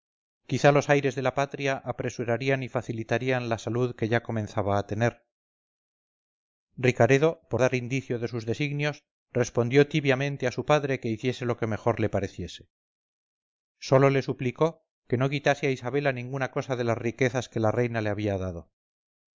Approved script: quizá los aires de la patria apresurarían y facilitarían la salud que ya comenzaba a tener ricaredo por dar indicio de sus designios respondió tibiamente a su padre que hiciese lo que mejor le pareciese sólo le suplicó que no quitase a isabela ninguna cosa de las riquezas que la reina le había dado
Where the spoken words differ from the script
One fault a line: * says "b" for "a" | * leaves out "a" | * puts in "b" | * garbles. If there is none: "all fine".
all fine